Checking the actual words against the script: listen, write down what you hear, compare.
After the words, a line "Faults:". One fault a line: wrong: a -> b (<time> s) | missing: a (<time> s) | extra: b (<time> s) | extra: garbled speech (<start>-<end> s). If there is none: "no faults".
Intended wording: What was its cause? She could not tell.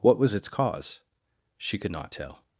What was its cause? She could not tell.
Faults:
no faults